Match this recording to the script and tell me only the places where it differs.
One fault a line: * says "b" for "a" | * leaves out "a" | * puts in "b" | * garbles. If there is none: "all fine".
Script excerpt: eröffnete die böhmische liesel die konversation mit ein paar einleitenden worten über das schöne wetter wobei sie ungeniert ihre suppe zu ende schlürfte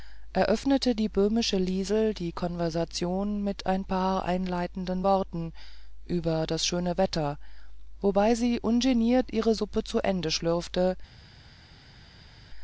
all fine